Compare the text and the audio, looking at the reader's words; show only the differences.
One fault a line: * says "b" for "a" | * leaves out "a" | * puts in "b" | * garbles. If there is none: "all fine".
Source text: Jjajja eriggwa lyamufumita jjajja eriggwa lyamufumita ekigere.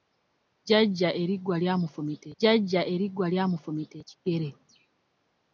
all fine